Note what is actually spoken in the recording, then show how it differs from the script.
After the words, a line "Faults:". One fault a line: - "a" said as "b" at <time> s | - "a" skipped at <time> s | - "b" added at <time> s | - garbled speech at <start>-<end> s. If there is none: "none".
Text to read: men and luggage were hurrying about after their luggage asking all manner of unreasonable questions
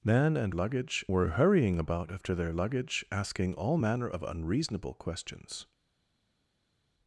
men and luggage were hurrying about after their luggage asking all manner of unreasonable questions
Faults:
none